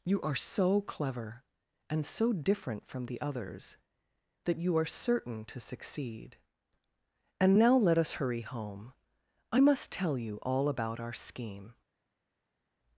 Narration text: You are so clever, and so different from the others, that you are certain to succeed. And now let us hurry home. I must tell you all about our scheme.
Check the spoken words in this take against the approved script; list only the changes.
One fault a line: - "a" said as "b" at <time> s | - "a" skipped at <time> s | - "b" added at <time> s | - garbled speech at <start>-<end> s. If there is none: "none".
none